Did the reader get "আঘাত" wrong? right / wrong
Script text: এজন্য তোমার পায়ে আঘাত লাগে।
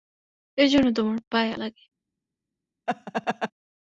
wrong